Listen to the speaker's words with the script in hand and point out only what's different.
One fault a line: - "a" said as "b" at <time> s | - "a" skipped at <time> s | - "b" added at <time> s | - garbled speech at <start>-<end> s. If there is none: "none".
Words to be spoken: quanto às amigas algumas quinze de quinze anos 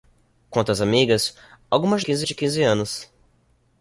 none